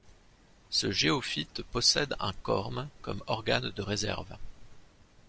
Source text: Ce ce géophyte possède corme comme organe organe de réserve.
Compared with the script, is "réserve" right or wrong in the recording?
right